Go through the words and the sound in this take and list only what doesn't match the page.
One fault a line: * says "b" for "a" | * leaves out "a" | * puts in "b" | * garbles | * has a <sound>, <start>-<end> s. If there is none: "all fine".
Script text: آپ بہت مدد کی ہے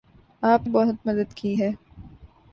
all fine